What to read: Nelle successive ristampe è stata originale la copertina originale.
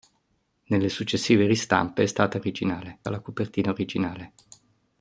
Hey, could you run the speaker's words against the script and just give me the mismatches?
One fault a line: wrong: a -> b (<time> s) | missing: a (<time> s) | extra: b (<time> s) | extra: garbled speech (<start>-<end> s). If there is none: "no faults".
no faults